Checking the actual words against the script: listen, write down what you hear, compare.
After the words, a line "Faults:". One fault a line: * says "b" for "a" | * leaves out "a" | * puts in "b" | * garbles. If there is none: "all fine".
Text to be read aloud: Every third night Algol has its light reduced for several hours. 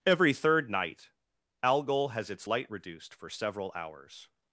Every third night Algol has its light reduced for several hours.
Faults:
all fine